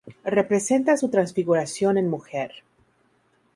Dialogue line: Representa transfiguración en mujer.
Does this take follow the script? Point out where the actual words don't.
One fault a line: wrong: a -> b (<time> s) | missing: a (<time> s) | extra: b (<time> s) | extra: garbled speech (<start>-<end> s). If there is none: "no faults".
extra: su (0.9 s)